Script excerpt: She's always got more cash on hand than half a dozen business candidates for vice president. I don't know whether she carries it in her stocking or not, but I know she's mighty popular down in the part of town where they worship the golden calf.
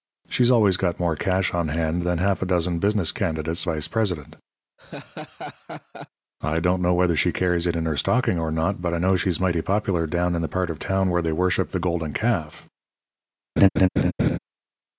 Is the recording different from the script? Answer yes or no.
yes